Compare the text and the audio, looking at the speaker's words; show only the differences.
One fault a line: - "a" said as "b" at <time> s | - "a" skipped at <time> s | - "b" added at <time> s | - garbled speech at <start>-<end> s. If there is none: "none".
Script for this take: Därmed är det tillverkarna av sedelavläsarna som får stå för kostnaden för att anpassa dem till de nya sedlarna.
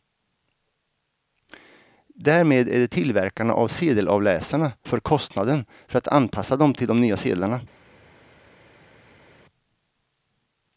- "som får stå" skipped at 4.7 s